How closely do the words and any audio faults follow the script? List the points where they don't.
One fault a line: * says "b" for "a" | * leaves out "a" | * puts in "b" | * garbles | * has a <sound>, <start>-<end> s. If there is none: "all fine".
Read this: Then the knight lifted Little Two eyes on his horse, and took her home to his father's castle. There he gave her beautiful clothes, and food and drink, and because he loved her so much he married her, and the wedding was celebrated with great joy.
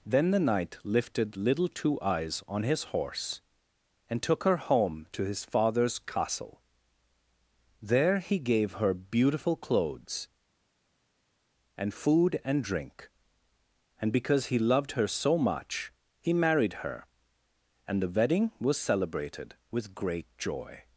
all fine